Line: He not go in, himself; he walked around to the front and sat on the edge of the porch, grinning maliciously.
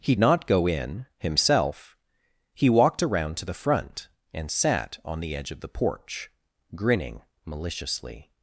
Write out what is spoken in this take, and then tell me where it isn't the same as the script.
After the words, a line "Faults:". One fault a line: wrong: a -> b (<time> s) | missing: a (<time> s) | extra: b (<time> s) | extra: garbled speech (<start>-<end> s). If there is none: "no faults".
He not go in, himself; he walked around to the front and sat on the edge of the porch, grinning maliciously.
Faults:
no faults